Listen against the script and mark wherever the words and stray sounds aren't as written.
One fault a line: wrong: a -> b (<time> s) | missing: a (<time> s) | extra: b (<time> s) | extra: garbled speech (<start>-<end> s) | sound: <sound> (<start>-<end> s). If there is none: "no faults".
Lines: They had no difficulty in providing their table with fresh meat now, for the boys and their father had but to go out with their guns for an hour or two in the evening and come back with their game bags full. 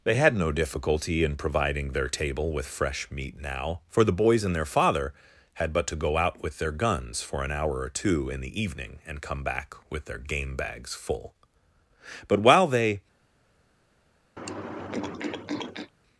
extra: But while they (12.3 s)
sound: throat clearing (14.4-15.9 s)